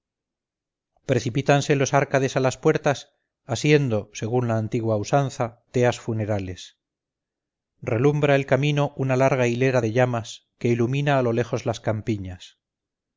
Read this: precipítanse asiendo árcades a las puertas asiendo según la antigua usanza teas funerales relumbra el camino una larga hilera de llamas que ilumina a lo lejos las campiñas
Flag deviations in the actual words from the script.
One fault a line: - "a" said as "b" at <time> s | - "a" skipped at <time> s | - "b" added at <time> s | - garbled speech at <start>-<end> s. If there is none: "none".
- "asiendo" said as "los" at 1.8 s